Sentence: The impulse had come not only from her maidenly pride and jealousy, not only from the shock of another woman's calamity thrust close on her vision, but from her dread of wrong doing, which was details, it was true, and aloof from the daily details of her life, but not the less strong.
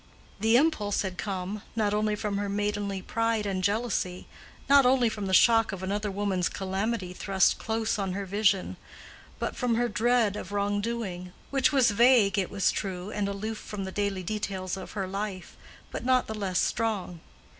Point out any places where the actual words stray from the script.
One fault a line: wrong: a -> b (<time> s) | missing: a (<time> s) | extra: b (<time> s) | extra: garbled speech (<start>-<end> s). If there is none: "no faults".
wrong: details -> vague (11.9 s)